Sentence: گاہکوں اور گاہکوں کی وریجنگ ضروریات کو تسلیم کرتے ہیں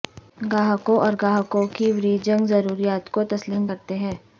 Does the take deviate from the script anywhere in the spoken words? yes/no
no